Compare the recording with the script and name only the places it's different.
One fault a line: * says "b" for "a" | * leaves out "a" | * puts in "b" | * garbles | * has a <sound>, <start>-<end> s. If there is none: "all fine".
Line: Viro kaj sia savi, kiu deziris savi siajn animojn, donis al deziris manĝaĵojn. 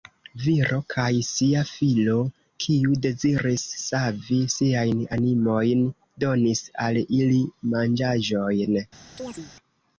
* says "filo" for "savi"
* says "ili" for "deziris"
* has a chirp, 9.2-9.5 s